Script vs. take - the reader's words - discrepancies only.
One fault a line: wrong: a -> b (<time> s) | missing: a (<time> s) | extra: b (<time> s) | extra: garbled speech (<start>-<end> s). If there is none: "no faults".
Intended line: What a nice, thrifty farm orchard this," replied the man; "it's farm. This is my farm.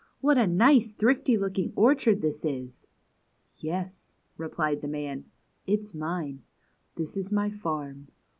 wrong: farm -> looking (1.4 s)
extra: is Yes (2.4 s)
wrong: farm -> mine (5.9 s)